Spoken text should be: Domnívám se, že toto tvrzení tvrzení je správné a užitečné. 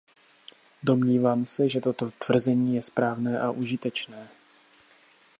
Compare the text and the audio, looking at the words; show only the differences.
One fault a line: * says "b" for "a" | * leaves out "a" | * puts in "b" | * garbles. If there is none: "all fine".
* leaves out "tvrzení"